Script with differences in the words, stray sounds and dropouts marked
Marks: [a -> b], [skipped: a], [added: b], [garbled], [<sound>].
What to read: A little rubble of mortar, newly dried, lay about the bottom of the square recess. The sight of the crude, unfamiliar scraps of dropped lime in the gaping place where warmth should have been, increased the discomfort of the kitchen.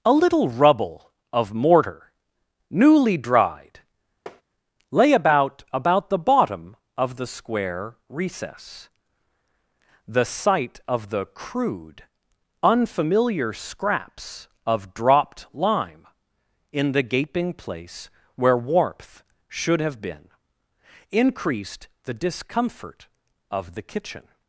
A little rubble of mortar, newly dried, [tap] lay about [added: about] the bottom of the square recess. The sight of the crude, unfamiliar scraps of dropped lime in the gaping place where warmth should have been, increased the discomfort of the kitchen.